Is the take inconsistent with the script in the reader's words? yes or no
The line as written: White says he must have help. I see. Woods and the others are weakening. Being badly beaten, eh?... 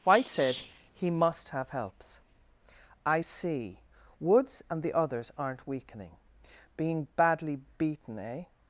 yes